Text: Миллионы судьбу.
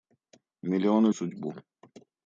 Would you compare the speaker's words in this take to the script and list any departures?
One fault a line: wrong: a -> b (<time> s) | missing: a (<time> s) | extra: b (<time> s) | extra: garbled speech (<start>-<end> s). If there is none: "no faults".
no faults